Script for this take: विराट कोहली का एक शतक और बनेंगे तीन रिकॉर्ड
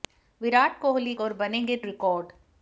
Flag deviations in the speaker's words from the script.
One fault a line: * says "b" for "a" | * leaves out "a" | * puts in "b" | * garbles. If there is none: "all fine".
* leaves out "का एक शतक"
* leaves out "तीन"